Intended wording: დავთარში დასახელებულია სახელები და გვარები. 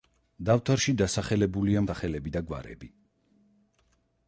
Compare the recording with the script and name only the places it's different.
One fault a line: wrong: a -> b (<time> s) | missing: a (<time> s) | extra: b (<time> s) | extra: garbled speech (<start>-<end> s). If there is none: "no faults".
no faults